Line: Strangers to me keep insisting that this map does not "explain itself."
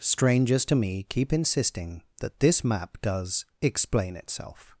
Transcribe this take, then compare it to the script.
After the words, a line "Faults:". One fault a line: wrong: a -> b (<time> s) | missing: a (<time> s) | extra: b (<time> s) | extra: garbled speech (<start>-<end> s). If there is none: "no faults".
Strangers to me keep insisting that this map does "explain itself."
Faults:
missing: not (3.5 s)